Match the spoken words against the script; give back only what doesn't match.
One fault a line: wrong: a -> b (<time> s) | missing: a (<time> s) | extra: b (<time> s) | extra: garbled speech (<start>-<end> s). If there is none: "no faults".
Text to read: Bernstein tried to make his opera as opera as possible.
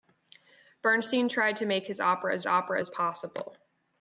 no faults